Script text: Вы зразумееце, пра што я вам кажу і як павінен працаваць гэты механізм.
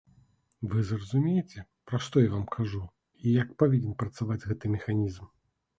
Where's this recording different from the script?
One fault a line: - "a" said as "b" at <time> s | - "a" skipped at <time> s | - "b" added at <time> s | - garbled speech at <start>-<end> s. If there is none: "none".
none